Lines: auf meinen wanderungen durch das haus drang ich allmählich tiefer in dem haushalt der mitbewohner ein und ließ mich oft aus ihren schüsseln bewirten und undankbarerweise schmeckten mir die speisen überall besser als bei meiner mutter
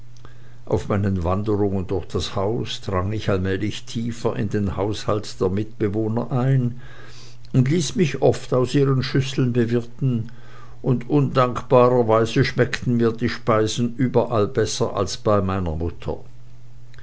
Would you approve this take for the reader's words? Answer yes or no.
no